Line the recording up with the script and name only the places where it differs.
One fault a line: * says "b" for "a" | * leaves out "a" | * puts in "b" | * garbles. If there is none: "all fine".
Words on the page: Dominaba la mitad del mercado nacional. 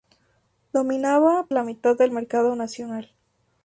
all fine